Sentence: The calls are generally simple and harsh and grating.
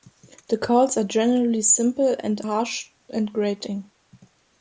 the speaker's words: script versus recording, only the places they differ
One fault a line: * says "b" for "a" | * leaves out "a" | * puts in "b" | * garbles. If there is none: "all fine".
all fine